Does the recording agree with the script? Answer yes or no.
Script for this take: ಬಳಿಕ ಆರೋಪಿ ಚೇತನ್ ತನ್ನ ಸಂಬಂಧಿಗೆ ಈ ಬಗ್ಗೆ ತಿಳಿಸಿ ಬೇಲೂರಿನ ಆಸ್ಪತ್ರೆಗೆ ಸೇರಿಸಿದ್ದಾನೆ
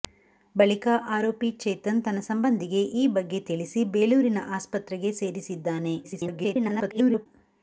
no